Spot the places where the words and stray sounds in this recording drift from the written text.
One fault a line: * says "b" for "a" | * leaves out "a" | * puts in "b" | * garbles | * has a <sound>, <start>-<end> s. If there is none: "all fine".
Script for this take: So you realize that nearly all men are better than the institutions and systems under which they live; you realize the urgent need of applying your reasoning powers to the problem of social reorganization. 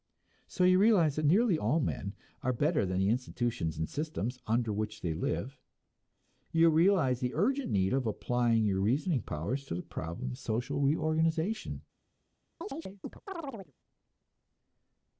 * has a chirp, 12.6-13.7 s